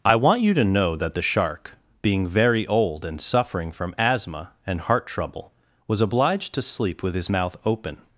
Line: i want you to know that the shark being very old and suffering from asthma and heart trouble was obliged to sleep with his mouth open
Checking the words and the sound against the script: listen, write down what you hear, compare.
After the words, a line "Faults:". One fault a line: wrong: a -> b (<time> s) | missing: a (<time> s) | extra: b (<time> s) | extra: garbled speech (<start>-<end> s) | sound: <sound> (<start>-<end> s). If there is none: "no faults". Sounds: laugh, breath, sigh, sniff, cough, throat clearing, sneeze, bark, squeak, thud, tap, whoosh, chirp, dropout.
i want you to know that the shark being very old and suffering from asthma and heart trouble was obliged to sleep with his mouth open
Faults:
no faults